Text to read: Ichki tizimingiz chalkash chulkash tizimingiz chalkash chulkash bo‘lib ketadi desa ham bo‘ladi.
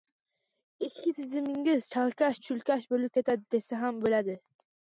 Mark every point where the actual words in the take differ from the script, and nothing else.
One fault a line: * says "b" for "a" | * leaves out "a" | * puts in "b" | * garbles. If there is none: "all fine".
* leaves out "tizimingiz chalkash chulkash"